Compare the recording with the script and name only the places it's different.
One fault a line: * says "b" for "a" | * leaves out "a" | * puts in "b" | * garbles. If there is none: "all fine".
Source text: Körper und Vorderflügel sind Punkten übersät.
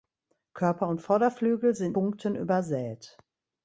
all fine